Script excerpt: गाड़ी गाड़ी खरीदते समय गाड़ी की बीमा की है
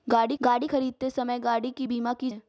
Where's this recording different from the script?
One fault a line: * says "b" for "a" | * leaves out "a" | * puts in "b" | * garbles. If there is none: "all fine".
all fine